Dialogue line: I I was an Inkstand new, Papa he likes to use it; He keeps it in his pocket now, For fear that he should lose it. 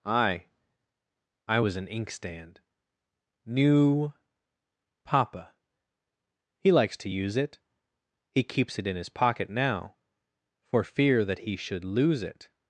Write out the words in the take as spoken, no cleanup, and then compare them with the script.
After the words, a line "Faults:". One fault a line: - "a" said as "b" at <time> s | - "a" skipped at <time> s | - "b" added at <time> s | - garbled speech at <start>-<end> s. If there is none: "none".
I I was an Inkstand new, Papa he likes to use it; He keeps it in his pocket now, For fear that he should lose it.
Faults:
none